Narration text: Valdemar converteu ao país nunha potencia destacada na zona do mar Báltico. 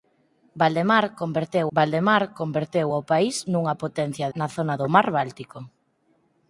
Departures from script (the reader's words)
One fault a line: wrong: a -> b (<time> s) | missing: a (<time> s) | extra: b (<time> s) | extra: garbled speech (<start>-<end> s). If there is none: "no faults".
extra: valdemar converteu (1.8 s)
missing: destacada (4.3 s)